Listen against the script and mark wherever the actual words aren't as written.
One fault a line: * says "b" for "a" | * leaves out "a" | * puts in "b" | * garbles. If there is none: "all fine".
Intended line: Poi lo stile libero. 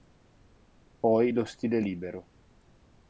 all fine